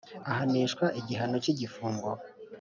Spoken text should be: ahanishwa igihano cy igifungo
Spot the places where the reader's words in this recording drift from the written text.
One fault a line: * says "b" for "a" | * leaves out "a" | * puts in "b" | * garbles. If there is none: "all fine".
all fine